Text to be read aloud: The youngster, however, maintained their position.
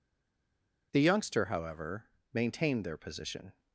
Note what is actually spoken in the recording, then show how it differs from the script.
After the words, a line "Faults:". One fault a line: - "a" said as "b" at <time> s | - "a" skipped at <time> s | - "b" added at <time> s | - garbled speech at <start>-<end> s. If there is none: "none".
The youngster, however, maintained their position.
Faults:
none